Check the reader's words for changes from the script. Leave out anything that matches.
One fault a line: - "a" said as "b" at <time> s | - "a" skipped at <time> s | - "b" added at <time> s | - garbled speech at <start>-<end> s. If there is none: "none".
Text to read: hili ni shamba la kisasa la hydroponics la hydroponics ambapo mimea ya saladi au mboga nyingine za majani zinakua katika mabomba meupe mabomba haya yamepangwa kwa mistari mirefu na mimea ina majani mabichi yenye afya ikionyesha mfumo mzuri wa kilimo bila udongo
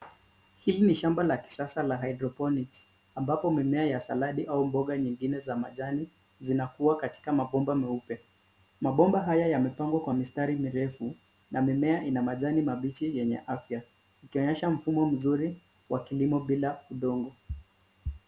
- "la hydroponics" skipped at 2.9 s